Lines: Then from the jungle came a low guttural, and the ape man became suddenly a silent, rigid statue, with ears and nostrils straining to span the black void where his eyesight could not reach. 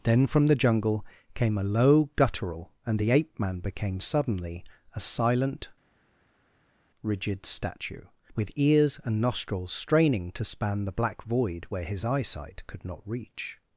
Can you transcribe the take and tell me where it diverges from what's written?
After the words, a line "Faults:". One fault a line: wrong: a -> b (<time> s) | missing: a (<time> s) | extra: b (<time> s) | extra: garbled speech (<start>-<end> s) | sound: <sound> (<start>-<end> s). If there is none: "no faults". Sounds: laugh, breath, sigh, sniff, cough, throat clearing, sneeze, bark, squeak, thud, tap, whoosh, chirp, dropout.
Then from the jungle came a low guttural, and the ape man became suddenly a silent, rigid statue, with ears and nostrils straining to span the black void where his eyesight could not reach.
Faults:
no faults